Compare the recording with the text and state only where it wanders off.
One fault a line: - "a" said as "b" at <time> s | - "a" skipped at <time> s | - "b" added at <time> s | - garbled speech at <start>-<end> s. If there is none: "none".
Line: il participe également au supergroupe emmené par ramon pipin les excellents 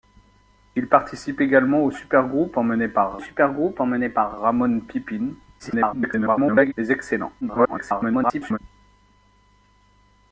- "supergroupe emmené par" added at 3.2 s
- garbled speech at 5.6-6.7 s
- garbled speech at 7.4-8.6 s